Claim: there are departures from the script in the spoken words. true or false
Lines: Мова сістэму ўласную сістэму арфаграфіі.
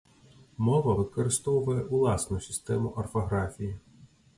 true